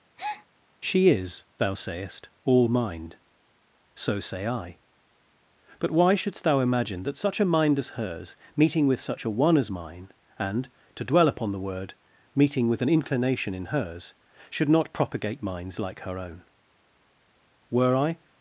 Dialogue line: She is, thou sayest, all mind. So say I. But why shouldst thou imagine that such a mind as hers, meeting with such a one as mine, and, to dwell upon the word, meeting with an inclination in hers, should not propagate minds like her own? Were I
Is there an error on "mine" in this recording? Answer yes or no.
no